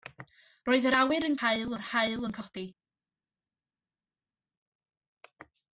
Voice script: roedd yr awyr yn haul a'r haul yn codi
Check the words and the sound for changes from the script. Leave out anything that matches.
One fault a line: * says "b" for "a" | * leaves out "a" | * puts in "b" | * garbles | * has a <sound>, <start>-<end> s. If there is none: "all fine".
all fine